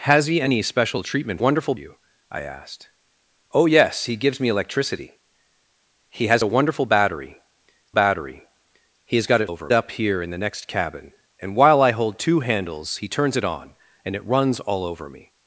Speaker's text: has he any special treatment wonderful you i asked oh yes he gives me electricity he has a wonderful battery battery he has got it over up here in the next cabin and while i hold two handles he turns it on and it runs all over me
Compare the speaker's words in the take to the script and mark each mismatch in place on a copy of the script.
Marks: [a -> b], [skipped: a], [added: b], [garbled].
has he any special treatment wonderful you i asked oh yes he gives me electricity he has a wonderful battery battery he has got it over up here in the next cabin and while i hold two handles he turns it on and it runs all over me